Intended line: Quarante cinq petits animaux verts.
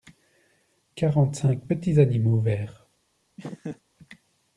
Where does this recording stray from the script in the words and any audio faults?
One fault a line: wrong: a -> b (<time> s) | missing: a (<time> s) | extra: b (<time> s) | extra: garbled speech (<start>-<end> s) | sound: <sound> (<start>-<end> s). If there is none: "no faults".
sound: laugh (3.4-3.8 s)